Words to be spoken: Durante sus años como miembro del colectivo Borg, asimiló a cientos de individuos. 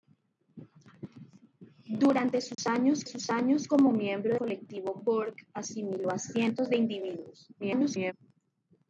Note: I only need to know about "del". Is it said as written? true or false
false